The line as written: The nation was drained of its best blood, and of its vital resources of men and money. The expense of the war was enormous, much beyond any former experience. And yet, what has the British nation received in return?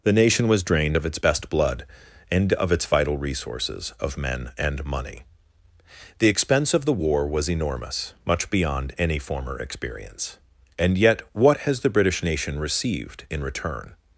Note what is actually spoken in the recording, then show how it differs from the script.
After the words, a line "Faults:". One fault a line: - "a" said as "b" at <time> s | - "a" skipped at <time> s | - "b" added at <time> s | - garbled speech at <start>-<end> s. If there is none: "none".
The nation was drained of its best blood, and of its vital resources of men and money. The expense of the war was enormous, much beyond any former experience. And yet, what has the British nation received in return?
Faults:
none